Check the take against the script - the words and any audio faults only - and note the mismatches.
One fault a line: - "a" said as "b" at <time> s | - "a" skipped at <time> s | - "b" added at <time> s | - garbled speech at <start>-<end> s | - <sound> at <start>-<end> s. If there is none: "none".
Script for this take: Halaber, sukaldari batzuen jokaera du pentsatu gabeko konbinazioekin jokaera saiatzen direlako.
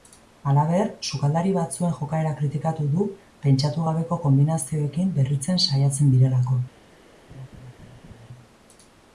- "kritikatu" added at 2.4 s
- "jokaera" said as "berritzen" at 5.2 s
- laugh at 7.3-8.3 s